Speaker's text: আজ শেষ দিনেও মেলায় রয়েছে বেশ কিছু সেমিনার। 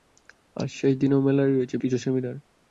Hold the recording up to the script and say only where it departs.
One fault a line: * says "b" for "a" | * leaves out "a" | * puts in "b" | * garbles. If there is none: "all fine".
* leaves out "বেশ"